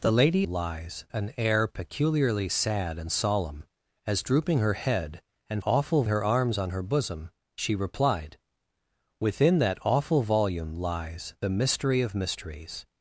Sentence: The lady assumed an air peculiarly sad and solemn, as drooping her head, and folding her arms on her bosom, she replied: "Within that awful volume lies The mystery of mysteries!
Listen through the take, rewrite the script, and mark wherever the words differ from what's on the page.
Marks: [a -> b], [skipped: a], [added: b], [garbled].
The lady [assumed -> lies] an air peculiarly sad and solemn, as drooping her head, and [folding -> awful] her arms on her bosom, she replied: "Within that awful volume lies The mystery of mysteries!